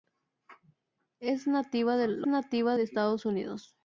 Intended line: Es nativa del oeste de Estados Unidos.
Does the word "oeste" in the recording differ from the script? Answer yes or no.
yes